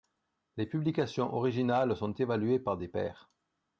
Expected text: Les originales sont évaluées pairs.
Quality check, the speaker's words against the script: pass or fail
fail